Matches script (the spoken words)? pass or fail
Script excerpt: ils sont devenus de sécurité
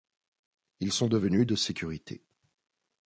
pass